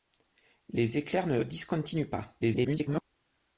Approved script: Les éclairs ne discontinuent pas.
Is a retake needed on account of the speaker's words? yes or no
yes